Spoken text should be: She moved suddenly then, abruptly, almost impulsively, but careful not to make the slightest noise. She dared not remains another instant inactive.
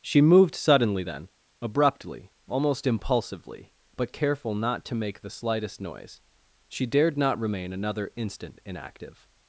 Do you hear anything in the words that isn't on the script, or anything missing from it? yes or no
yes